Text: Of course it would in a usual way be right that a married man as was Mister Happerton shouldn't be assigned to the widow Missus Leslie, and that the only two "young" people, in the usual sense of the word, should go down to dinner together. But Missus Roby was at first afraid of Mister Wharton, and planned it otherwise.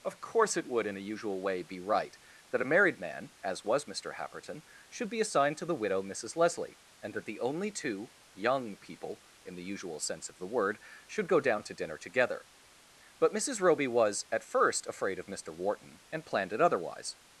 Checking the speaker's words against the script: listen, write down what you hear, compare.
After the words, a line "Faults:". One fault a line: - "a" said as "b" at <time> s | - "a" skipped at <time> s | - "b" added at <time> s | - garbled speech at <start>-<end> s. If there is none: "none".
Of course it would in a usual way be right that a married man as was Mister Happerton should be assigned to the widow Missus Leslie, and that the only two "young" people, in the usual sense of the word, should go down to dinner together. But Missus Roby was at first afraid of Mister Wharton, and planned it otherwise.
Faults:
- "shouldn't" said as "should" at 4.9 s